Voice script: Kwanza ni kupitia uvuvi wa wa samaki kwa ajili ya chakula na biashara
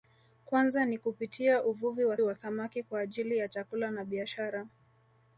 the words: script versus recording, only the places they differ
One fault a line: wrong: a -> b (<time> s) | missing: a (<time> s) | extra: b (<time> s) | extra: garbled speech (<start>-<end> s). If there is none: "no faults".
no faults